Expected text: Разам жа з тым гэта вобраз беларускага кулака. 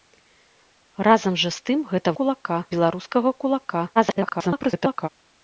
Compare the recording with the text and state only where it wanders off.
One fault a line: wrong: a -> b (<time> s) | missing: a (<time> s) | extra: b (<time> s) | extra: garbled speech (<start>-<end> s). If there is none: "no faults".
wrong: вобраз -> кулака (2.2 s)
extra: garbled speech (4.0-5.1 s)